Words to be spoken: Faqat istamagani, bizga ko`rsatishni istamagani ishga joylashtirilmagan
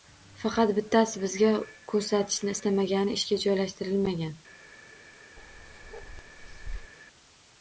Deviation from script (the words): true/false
true